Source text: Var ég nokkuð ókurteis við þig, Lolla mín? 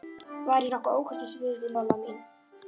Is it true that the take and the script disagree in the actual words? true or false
false